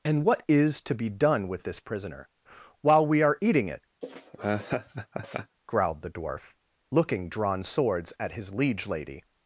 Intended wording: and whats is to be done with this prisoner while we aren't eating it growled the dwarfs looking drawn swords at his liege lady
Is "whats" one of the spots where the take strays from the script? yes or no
yes